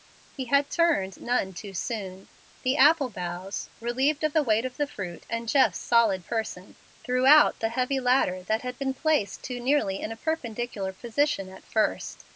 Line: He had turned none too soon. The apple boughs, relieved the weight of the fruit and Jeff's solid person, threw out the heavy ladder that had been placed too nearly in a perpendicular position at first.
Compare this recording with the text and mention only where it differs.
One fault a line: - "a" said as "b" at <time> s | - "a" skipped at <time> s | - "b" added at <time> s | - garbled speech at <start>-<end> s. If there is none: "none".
- "of" added at 4.2 s